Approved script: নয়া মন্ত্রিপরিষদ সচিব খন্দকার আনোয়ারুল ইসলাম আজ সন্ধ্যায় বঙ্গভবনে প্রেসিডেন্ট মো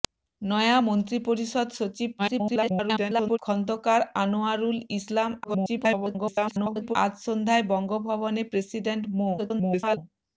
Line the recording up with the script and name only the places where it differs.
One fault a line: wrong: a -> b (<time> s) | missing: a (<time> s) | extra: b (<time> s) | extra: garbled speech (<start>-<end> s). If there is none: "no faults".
extra: garbled speech (2.2-3.4 s)
extra: garbled speech (5.4-7.0 s)
extra: garbled speech (9.4-10.0 s)